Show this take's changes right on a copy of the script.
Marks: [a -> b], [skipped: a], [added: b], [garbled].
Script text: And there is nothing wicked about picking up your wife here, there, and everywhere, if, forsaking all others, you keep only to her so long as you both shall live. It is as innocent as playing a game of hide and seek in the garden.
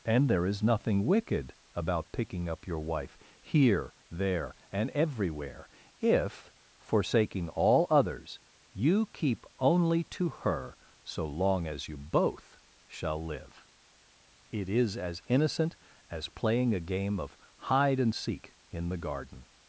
And there is nothing wicked about picking up your wife here, there, and everywhere, if, forsaking all others, you keep only to her so long as you both shall live. It is as innocent as playing a game of hide and seek in the garden.